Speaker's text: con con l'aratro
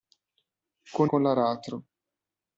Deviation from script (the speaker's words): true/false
false